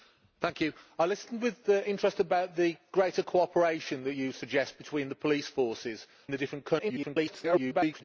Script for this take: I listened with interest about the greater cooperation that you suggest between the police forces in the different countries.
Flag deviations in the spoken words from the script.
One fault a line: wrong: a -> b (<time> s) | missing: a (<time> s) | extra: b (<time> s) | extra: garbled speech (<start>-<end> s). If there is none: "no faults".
missing: in (6.1 s)
extra: garbled speech (6.8-8.0 s)